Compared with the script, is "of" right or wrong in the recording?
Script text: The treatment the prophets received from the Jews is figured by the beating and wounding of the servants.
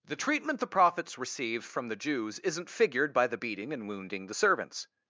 wrong